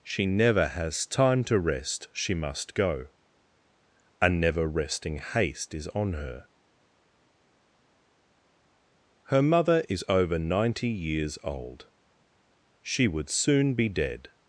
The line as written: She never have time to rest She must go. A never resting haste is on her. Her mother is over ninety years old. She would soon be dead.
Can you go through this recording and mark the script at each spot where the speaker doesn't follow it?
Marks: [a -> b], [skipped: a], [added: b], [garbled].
She never [have -> has] time to rest She must go. A never resting haste is on her. Her mother is over ninety years old. She would soon be dead.